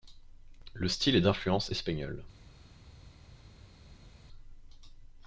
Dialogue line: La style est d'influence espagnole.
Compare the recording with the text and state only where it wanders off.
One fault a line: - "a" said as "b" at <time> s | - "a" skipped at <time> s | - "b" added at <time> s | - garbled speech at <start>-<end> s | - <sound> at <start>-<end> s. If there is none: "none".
- "La" said as "Le" at 0.7 s